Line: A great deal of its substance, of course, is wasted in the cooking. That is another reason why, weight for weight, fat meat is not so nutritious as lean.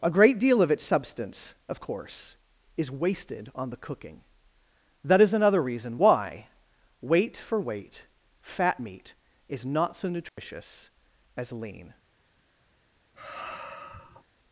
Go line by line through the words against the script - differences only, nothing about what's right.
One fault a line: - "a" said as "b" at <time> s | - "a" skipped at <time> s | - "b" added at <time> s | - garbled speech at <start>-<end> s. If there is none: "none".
- "in" said as "on" at 3.5 s